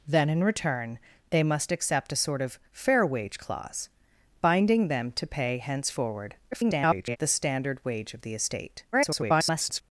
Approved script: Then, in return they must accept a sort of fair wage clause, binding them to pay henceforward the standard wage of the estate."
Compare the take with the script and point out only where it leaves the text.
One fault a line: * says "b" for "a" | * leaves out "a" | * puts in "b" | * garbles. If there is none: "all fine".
* garbles
* garbles